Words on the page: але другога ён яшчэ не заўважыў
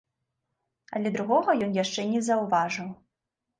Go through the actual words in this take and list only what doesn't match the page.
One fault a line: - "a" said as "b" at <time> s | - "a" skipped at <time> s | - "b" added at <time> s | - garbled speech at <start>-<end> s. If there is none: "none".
none